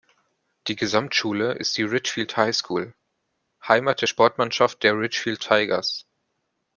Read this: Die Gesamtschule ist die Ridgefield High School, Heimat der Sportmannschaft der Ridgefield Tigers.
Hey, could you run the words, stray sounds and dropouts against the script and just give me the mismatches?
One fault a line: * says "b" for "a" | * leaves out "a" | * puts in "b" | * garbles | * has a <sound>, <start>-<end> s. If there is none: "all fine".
all fine